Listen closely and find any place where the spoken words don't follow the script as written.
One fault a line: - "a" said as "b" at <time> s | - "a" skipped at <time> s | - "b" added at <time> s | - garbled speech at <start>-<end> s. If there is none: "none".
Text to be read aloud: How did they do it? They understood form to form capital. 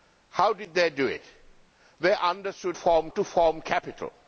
none